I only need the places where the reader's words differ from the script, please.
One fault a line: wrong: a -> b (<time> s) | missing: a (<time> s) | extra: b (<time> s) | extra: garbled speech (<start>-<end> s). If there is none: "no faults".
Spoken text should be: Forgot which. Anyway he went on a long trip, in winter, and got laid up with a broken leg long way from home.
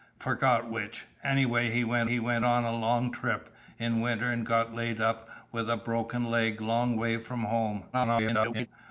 extra: he went (2.0 s)
extra: garbled speech (7.9-8.7 s)